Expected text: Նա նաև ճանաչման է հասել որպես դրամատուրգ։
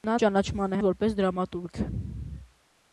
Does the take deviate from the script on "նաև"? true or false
true